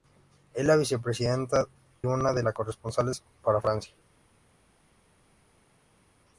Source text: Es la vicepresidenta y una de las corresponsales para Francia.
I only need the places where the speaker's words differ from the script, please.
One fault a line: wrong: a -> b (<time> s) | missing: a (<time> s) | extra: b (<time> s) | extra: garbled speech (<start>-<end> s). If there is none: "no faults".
missing: y (1.7 s)